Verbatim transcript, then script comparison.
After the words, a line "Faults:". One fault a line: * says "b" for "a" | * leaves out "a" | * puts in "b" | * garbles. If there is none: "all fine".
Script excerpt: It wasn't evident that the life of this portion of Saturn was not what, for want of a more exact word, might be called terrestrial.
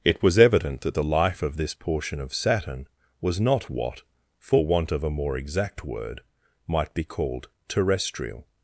It was evident that the life of this portion of Saturn was not what, for want of a more exact word, might be called terrestrial.
Faults:
* says "was" for "wasn't"